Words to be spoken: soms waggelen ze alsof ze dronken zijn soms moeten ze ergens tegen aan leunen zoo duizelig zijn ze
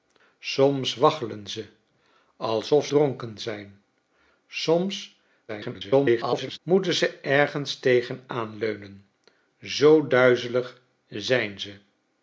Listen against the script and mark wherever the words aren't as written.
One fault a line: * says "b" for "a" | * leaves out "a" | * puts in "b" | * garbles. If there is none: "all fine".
* leaves out "ze"
* garbles